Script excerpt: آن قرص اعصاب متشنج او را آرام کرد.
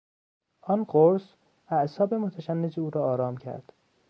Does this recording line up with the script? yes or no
yes